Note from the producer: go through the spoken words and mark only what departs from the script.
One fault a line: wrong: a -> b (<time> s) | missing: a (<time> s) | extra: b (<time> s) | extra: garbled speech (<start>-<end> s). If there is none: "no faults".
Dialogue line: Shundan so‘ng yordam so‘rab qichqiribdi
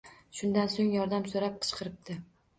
no faults